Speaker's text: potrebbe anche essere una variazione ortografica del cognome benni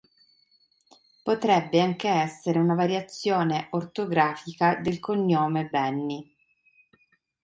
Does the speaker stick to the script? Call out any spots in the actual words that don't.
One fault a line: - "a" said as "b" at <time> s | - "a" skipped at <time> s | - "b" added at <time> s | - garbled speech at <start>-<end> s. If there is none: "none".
none